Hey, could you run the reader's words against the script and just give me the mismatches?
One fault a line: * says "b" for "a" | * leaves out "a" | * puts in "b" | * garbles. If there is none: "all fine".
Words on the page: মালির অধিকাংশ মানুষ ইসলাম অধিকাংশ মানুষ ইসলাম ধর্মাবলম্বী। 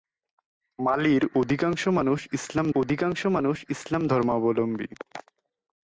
all fine